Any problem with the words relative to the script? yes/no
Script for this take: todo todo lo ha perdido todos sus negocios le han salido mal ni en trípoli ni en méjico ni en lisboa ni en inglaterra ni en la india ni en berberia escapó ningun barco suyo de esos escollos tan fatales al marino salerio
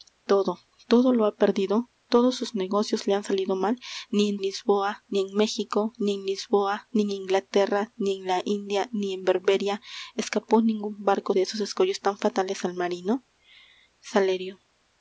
yes